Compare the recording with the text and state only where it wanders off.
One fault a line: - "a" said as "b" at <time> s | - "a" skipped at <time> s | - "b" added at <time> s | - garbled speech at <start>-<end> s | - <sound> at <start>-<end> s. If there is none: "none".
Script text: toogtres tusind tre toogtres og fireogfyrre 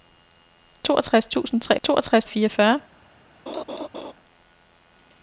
- laugh at 3.5-4.1 s